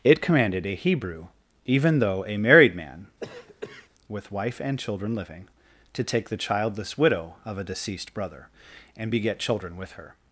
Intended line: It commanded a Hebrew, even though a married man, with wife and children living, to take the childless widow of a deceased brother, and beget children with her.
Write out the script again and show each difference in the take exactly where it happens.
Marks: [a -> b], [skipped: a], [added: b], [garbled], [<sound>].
It commanded a Hebrew, even though a married man, [cough] with wife and children living, to take the childless widow of a deceased brother, and beget children with her.